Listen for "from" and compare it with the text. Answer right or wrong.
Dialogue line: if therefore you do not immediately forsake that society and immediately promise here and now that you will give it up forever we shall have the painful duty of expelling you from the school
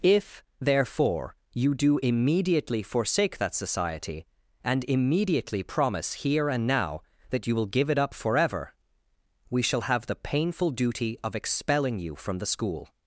right